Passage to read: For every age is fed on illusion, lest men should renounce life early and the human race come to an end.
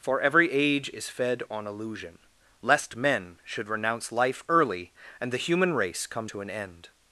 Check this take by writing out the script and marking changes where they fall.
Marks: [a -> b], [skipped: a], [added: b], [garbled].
For every age is fed on illusion, lest men should renounce life early and the human race come to an end.